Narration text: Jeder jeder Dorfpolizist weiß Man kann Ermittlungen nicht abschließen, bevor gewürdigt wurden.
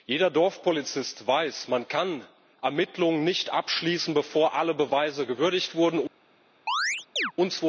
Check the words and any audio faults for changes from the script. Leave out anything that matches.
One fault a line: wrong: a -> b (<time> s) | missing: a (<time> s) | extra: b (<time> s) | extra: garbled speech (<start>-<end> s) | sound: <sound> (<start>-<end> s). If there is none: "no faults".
missing: jeder (0.3 s)
extra: alle Beweise (4.5 s)
sound: chirp (6.7-7.3 s)